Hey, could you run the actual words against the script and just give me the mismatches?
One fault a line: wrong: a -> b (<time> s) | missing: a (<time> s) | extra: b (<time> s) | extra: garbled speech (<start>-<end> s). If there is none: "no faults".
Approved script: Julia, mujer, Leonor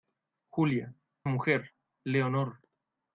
no faults